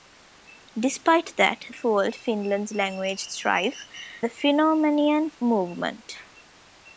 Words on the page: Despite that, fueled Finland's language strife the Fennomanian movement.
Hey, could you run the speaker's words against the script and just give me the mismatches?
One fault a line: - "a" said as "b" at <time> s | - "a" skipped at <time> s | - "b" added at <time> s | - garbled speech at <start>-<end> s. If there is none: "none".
none